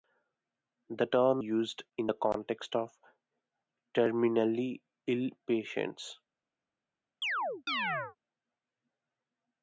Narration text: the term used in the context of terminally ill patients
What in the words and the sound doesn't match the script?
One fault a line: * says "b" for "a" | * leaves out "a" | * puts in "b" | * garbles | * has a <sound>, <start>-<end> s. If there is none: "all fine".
* has a chirp, 7.2-8.2 s